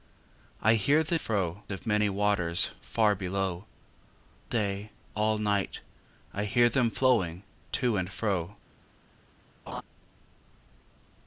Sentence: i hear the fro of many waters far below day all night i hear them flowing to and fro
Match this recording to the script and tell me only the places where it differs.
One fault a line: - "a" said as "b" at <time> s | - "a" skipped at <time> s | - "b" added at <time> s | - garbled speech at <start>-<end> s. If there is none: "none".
none